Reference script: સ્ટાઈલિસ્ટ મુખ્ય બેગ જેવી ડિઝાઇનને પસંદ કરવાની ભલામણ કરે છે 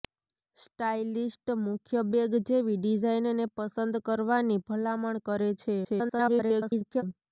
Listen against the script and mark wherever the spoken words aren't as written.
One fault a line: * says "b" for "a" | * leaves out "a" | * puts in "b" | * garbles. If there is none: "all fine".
* garbles